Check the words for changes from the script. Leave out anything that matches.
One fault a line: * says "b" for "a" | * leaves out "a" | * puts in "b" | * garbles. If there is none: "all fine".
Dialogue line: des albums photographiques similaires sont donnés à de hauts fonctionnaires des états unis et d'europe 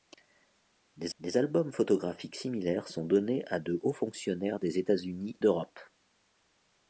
* puts in "des"
* leaves out "et"